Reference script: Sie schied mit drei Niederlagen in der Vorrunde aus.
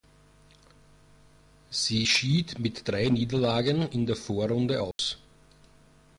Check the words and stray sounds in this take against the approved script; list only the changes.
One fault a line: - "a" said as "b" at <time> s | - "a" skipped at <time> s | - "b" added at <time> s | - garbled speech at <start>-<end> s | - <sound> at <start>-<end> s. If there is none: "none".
- dropout at 4.9-5.0 s